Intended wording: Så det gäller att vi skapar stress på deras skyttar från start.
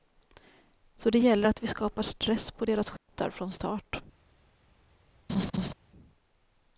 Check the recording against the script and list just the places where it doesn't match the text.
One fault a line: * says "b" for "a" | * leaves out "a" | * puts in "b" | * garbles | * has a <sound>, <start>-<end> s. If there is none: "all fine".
* has a dropout, 3.0-3.1 s
* has a laugh, 5.3-5.7 s